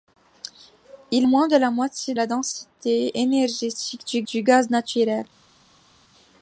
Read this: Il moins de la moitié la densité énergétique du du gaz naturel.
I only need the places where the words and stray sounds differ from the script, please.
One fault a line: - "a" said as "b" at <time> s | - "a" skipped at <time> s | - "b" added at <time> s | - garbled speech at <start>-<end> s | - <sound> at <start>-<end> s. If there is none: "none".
none